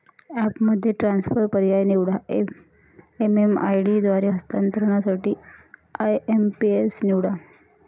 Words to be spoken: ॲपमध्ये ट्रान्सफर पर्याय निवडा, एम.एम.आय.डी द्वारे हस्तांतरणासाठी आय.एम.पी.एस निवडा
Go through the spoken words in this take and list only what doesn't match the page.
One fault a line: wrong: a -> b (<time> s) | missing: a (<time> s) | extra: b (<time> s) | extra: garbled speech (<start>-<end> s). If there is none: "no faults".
no faults